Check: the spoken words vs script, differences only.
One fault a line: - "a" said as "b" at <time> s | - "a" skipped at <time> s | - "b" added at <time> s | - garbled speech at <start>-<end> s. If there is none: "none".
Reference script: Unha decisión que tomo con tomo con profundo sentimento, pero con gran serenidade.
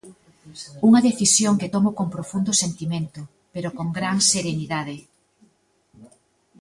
- "tomo con" skipped at 2.1 s